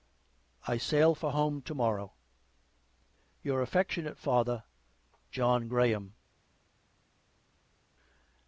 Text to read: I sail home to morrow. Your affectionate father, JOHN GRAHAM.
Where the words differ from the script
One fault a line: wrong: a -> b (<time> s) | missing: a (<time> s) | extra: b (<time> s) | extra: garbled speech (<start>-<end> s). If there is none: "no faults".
extra: for (1.1 s)